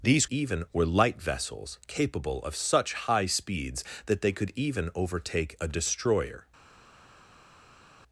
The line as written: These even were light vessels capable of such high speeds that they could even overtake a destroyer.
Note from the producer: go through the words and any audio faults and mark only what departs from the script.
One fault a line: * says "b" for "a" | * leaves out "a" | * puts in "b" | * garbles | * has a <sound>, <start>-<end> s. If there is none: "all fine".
all fine